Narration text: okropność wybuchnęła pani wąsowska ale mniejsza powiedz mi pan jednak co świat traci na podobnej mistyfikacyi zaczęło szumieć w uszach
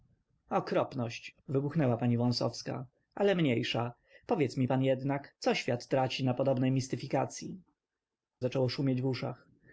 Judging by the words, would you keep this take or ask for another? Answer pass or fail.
pass